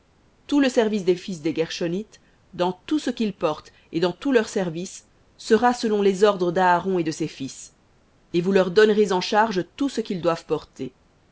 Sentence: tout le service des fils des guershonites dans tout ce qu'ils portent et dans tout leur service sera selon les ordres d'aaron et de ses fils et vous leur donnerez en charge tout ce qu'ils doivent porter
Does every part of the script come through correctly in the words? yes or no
yes